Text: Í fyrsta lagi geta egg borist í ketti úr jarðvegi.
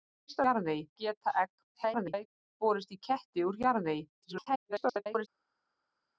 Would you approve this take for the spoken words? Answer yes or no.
no